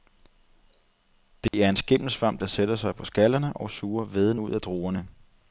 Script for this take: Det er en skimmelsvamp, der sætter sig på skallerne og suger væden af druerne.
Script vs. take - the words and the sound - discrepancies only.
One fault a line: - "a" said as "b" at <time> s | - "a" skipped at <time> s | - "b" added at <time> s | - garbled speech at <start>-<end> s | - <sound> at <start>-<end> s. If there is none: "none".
- dropout at 1.5-1.5 s
- "ud" added at 4.4 s